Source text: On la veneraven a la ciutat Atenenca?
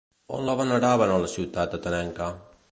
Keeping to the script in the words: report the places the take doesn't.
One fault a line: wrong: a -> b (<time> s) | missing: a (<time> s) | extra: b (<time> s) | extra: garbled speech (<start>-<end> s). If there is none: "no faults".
no faults